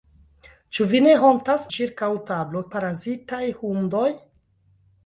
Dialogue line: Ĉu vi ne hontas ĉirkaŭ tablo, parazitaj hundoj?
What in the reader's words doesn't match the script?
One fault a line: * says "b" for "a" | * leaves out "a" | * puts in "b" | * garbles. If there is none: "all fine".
all fine